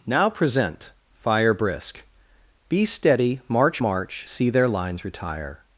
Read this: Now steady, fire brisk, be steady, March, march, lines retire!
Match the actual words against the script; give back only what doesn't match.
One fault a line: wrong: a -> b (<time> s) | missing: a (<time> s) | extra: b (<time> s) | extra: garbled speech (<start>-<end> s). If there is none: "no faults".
wrong: steady -> present (0.3 s)
extra: see their (4.3 s)